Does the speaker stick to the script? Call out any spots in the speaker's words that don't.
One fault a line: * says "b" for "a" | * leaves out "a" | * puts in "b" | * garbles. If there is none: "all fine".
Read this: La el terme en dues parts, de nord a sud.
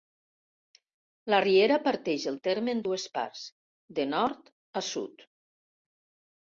* puts in "riera parteix"